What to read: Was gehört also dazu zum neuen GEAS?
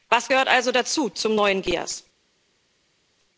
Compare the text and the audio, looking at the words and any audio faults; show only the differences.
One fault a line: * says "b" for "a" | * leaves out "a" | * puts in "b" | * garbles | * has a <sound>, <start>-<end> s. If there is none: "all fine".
all fine